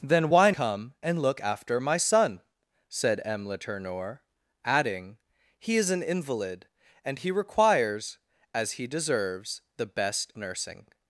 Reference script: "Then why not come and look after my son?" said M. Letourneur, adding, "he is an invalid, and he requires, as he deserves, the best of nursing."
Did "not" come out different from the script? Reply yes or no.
yes